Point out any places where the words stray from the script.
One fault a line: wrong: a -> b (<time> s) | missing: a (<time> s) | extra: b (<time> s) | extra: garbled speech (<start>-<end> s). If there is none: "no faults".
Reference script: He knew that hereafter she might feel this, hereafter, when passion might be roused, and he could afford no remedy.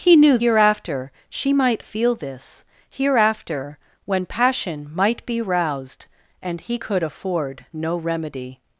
missing: that (0.4 s)